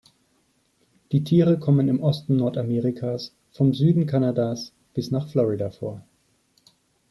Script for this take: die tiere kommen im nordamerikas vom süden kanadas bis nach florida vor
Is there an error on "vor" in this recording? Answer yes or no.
no